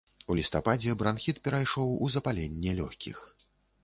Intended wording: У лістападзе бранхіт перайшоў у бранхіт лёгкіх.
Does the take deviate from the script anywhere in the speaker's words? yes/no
yes